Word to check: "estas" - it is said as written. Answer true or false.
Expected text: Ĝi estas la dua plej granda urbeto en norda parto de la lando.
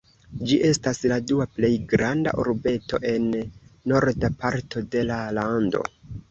true